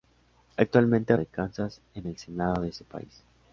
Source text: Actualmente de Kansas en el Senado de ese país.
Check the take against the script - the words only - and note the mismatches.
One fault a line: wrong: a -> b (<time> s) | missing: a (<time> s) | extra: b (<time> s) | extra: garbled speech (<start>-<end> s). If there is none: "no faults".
no faults